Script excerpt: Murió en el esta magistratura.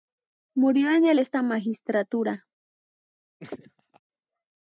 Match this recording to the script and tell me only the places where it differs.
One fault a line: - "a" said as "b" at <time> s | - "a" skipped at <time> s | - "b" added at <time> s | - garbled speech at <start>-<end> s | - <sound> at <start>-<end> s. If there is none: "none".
- laugh at 3.4-4.0 s